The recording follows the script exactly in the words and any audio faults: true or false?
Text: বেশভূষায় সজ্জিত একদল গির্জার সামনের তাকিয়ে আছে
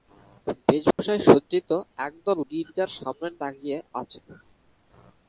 false